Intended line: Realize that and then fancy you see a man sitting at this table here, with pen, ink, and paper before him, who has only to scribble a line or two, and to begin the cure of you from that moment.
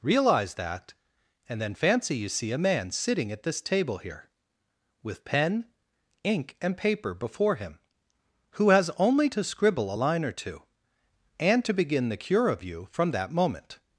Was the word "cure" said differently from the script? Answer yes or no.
no